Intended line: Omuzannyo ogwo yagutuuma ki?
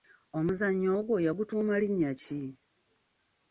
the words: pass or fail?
fail